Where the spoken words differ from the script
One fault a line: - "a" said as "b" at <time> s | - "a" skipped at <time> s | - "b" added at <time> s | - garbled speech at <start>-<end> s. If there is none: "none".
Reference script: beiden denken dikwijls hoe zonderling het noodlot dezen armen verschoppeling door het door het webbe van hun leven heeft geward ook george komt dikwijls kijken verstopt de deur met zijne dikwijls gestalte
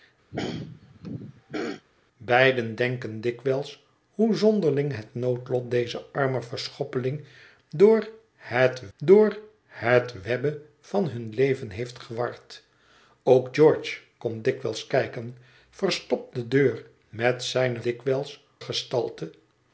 none